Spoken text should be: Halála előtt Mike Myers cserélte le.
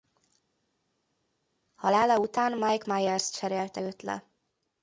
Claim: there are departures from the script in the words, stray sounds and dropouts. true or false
true